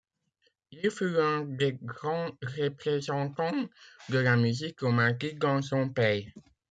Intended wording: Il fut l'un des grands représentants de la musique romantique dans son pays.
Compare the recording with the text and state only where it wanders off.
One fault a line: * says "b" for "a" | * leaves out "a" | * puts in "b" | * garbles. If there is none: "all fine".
all fine